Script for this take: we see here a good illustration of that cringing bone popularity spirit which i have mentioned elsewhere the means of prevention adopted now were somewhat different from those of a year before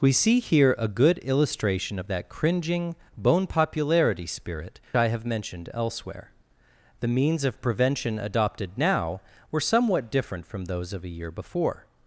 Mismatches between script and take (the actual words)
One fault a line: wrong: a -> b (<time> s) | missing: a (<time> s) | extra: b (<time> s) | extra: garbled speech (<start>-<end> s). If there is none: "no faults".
missing: which (4.8 s)